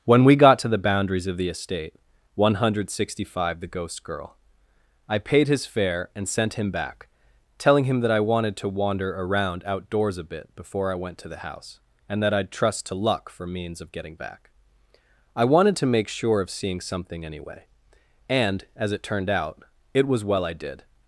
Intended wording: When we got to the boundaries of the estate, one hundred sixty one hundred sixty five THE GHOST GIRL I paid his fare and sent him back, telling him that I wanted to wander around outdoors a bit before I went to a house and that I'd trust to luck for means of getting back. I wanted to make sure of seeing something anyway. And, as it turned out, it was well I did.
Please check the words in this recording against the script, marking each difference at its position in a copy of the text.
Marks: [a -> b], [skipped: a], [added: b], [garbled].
When we got to the boundaries of the estate, one hundred sixty [skipped: one hundred sixty] five THE GHOST GIRL I paid his fare and sent him back, telling him that I wanted to wander around outdoors a bit before I went to [a -> the] house and that I'd trust to luck for means of getting back. I wanted to make sure of seeing something anyway. And, as it turned out, it was well I did.